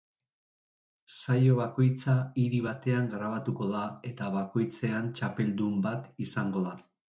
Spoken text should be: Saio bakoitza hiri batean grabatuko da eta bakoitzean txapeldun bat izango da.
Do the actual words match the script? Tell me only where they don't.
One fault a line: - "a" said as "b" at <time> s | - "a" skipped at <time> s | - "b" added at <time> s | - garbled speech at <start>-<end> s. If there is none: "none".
none